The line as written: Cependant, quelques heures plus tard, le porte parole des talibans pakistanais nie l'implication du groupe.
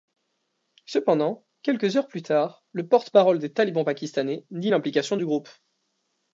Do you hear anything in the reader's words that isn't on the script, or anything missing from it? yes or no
no